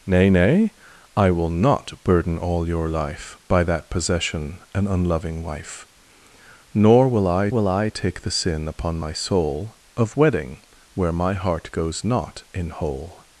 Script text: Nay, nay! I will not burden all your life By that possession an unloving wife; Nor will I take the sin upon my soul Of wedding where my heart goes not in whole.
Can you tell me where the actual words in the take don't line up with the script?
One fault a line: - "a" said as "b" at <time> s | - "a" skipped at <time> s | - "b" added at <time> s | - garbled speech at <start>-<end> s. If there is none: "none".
- "will I" added at 7.5 s